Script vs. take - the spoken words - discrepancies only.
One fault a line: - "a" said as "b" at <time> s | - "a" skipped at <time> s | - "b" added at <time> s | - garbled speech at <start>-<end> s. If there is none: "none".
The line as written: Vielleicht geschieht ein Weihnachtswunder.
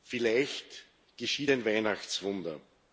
none